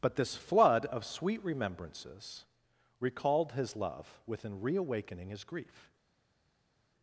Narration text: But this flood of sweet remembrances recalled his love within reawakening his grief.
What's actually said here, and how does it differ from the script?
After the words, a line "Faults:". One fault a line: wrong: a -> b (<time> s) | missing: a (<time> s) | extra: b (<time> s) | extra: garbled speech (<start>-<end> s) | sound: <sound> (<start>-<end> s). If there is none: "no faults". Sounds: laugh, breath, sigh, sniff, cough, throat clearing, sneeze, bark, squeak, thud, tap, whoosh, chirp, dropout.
But this flood of sweet remembrances recalled his love within reawakening his grief.
Faults:
no faults